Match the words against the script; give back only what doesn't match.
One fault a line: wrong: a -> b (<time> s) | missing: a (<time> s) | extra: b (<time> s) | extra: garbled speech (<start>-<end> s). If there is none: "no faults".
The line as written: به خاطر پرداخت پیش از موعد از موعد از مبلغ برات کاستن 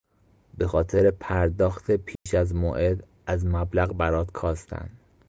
missing: موعد از (3.4 s)